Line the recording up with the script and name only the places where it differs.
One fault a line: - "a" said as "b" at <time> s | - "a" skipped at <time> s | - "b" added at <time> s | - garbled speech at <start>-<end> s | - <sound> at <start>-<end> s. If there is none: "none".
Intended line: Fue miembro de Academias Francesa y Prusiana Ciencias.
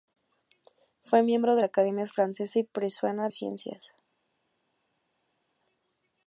none